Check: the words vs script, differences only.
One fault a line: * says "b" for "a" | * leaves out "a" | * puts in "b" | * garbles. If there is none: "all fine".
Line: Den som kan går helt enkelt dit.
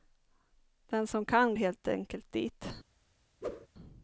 * leaves out "går"